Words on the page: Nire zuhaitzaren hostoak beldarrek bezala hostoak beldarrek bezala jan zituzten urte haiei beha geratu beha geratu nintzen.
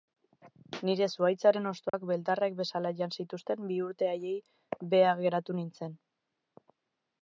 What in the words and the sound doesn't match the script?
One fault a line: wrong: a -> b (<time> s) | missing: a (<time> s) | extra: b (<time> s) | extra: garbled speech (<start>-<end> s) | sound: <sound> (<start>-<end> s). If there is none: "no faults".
sound: dropout (1.9-1.9 s)
missing: hostoak beldarrek bezala (2.9 s)
extra: bi (3.7 s)
missing: beha geratu (5.6 s)